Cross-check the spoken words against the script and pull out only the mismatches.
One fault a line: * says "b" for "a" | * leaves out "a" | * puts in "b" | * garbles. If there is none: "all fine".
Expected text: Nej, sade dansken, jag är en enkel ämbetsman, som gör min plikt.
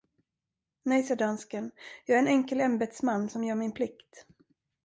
all fine